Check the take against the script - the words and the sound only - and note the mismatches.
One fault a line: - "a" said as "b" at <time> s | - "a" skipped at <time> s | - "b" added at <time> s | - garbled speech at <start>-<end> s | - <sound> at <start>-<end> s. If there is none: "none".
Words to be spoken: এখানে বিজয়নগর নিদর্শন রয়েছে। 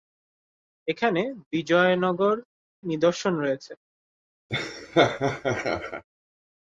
- laugh at 4.5-6.0 s